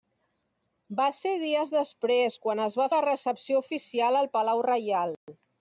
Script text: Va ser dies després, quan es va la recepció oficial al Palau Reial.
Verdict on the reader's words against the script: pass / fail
pass